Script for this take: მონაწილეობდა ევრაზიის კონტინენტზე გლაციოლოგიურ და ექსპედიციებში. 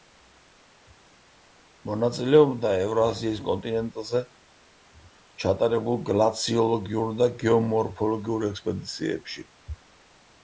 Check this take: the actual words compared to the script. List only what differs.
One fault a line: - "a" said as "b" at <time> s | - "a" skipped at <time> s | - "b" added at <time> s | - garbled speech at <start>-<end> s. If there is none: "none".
- "ჩატარებულ" added at 5.4 s
- "გეომორფოლოგიურ" added at 7.5 s